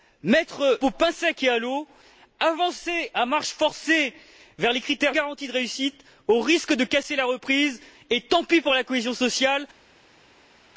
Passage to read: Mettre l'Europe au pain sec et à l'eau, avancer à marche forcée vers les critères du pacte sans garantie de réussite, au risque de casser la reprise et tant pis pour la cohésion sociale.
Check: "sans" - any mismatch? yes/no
yes